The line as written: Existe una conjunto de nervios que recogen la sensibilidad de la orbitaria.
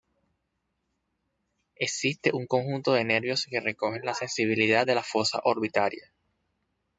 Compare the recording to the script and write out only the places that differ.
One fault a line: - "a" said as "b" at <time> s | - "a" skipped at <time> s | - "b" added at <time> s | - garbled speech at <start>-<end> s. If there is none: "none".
- "una" said as "un" at 2.3 s
- "fosa" added at 5.0 s